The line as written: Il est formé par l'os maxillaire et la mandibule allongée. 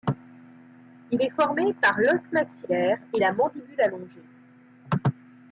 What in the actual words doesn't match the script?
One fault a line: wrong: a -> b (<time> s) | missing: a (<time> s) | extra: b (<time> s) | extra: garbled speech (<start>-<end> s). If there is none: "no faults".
no faults